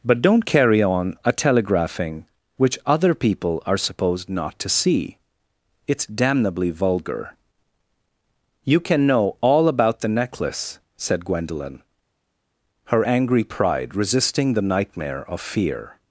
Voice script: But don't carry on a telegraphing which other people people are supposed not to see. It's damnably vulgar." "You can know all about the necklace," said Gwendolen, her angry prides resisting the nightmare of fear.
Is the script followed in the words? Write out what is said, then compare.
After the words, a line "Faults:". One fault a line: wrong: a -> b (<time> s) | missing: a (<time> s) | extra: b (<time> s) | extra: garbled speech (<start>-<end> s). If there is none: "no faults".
But don't carry on a telegraphing which other people are supposed not to see. It's damnably vulgar." "You can know all about the necklace," said Gwendolen, her angry pride resisting the nightmare of fear.
Faults:
missing: people (3.6 s)
wrong: prides -> pride (13.4 s)